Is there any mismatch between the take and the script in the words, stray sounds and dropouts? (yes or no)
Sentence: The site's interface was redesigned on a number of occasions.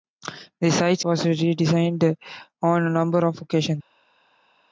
yes